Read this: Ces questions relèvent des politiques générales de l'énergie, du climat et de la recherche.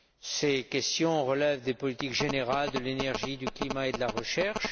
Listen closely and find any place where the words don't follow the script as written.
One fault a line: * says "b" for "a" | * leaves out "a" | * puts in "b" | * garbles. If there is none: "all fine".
all fine